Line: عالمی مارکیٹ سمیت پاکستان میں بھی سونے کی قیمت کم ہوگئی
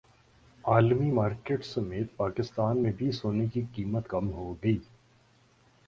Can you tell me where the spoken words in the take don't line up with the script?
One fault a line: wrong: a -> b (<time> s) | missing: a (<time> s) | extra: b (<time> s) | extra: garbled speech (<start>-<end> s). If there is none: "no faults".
no faults